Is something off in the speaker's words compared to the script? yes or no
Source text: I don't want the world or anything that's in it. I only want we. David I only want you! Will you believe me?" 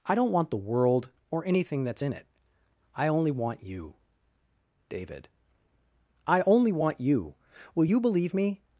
yes